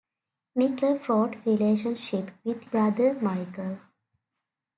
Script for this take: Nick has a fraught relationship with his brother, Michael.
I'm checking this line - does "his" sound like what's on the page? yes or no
no